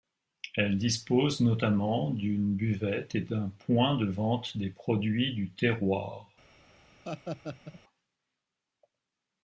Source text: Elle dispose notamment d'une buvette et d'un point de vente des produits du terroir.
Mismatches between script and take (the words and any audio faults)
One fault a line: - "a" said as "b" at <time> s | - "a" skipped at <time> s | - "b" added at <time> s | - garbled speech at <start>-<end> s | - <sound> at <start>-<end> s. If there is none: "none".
- laugh at 7.0-7.8 s